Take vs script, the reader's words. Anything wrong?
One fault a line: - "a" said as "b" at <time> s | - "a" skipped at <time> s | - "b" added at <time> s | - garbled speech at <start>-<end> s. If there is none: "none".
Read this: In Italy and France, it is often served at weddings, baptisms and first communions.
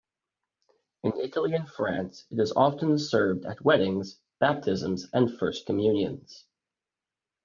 none